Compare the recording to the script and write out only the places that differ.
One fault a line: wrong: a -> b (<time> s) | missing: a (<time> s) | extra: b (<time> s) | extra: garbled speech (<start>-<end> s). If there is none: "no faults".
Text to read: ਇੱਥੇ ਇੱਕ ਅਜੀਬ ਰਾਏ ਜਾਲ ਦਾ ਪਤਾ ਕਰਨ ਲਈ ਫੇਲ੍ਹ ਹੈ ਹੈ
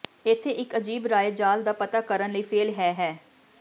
no faults